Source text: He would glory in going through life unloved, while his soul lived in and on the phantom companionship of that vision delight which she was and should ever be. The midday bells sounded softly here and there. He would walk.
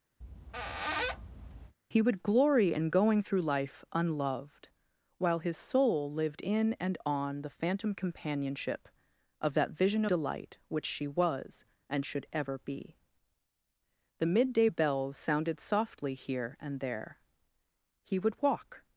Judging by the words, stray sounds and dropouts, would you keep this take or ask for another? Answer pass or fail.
fail